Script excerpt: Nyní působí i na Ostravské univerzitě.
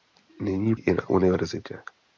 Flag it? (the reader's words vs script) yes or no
yes